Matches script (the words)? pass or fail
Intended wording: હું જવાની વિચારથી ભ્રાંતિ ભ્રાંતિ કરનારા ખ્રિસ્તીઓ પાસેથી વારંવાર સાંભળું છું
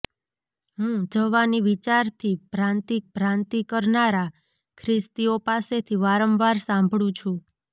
pass